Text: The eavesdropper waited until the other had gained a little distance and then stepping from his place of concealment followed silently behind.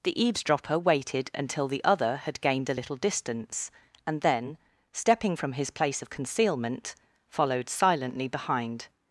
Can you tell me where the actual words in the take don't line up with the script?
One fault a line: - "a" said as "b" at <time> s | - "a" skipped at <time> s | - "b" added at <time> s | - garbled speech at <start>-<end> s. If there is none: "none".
none